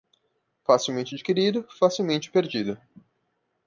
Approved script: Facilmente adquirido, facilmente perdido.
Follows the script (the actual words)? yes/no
yes